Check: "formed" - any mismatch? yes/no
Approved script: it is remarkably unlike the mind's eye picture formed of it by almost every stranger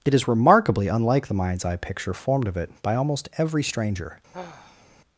no